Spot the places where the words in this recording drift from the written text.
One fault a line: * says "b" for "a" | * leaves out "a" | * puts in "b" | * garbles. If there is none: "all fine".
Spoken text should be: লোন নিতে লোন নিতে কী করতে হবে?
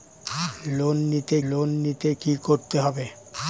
all fine